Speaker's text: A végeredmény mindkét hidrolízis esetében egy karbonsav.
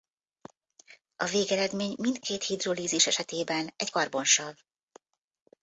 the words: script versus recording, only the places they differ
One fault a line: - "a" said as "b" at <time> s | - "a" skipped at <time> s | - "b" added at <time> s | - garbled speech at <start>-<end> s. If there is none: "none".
none